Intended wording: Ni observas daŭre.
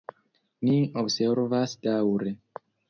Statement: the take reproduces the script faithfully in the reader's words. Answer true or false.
true